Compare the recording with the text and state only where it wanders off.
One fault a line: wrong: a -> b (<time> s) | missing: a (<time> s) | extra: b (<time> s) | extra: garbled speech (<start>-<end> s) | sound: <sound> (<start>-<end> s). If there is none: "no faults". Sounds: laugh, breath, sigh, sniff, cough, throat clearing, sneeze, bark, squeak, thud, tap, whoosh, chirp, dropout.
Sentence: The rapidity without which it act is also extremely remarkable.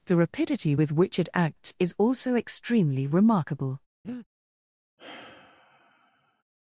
wrong: without -> with (0.7 s)
wrong: act -> acts (1.3 s)
sound: breath (4.0-4.3 s)
sound: sigh (5.0-6.4 s)